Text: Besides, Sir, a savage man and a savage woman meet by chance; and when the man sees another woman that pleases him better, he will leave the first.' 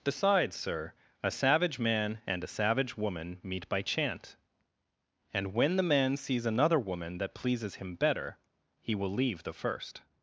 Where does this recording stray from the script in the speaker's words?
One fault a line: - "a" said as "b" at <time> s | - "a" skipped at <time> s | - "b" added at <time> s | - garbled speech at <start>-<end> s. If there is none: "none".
- "chance" said as "chant" at 3.8 s